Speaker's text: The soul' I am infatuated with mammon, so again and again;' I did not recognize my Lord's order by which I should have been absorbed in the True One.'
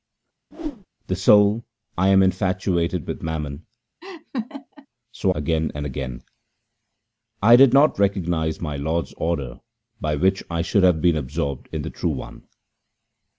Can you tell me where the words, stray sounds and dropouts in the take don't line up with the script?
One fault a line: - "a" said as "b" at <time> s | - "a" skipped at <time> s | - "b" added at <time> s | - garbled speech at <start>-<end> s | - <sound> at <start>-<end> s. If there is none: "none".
- whoosh at 0.5-0.9 s
- laugh at 4.0-4.9 s